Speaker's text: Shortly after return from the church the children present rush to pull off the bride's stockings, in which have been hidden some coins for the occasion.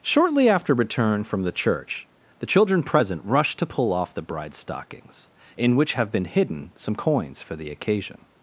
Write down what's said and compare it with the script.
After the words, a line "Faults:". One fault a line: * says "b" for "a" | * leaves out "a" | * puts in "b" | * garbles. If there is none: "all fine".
Shortly after return from the church the children present rush to pull off the bride's stockings, in which have been hidden some coins for the occasion.
Faults:
all fine